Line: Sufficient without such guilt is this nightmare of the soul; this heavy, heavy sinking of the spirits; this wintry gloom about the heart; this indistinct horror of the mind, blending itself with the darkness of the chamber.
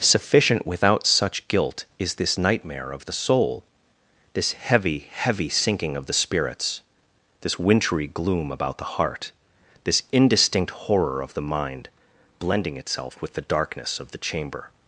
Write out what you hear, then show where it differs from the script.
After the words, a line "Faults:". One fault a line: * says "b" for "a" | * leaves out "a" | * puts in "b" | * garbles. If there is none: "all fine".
Sufficient without such guilt is this nightmare of the soul; this heavy, heavy sinking of the spirits; this wintry gloom about the heart; this indistinct horror of the mind, blending itself with the darkness of the chamber.
Faults:
all fine